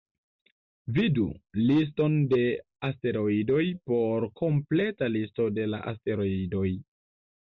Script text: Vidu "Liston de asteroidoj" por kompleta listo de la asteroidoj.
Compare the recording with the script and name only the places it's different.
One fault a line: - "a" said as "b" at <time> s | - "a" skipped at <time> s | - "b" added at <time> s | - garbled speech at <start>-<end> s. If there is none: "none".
none